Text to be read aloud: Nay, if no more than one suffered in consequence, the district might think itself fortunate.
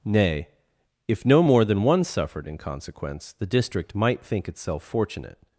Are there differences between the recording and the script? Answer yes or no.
no